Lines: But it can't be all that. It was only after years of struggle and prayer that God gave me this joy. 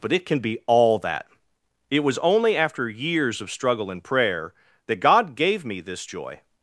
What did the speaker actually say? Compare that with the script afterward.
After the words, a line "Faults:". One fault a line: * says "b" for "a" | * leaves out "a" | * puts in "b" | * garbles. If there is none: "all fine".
But it can be all that. It was only after years of struggle and prayer that God gave me this joy.
Faults:
* says "can" for "can't"